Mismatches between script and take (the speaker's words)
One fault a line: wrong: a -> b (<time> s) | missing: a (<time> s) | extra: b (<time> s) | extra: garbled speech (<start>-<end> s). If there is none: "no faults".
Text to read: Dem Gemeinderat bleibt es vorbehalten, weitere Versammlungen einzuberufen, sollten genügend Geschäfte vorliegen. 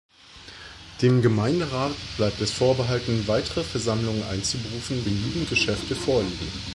missing: sollten (5.0 s)